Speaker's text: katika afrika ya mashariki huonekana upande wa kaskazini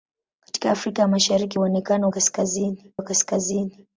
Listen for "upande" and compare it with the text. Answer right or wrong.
wrong